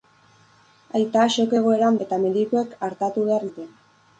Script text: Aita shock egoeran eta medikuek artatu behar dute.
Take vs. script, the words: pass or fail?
pass